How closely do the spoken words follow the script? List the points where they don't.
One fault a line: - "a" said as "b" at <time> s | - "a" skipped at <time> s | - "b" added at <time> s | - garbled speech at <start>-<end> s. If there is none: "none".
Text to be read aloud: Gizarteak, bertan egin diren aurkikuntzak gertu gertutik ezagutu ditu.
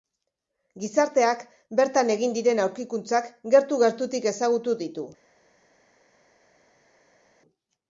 none